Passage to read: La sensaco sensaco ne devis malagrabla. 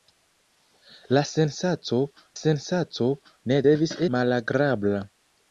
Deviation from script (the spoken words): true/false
false